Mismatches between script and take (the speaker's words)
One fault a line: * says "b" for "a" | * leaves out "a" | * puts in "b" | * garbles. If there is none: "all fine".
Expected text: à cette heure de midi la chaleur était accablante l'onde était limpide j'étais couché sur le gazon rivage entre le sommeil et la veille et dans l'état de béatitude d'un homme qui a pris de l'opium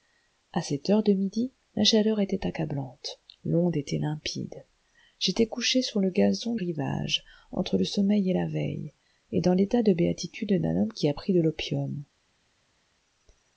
all fine